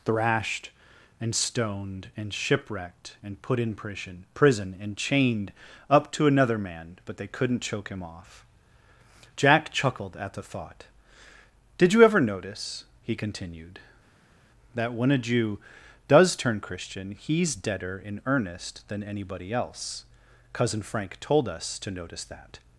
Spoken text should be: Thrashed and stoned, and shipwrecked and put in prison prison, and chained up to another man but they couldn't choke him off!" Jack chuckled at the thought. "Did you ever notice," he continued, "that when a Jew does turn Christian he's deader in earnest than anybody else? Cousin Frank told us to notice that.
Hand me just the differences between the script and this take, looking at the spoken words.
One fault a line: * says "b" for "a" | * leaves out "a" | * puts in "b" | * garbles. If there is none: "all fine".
all fine